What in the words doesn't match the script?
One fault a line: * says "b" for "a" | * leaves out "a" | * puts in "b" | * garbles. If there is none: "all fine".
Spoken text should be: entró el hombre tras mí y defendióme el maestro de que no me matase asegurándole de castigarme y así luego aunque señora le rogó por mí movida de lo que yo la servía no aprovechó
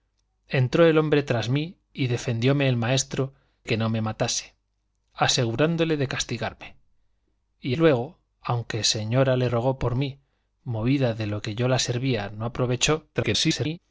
* leaves out "de"
* leaves out "así"
* garbles